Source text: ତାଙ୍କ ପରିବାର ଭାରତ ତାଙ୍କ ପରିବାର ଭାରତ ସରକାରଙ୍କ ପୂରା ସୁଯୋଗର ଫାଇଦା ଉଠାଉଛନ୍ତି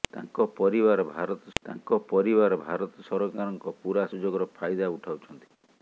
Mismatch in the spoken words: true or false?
false